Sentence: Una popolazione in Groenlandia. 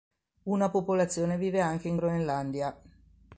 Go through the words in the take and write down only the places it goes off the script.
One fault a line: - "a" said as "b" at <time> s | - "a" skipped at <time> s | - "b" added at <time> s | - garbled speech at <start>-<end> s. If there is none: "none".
- "vive anche" added at 1.4 s